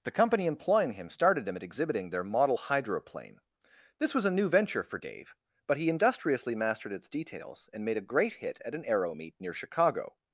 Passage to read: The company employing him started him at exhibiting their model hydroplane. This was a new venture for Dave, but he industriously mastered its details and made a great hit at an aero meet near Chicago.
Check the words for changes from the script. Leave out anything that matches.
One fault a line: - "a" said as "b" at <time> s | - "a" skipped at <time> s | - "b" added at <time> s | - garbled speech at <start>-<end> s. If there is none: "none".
none